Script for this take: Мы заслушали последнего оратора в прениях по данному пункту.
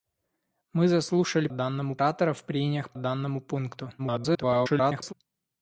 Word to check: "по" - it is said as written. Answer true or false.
false